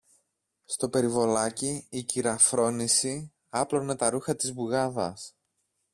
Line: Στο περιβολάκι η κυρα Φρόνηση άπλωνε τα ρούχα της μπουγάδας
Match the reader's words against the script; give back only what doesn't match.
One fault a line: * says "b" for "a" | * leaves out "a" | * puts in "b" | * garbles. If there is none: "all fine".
all fine